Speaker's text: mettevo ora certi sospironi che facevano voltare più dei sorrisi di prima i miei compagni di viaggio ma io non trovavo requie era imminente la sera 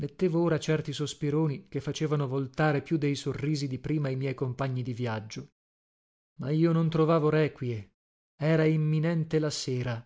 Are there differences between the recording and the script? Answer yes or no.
no